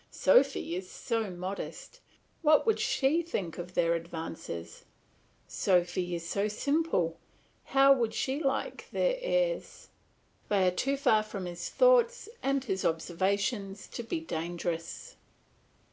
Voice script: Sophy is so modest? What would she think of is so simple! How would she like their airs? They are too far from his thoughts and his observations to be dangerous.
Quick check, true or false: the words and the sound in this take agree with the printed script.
false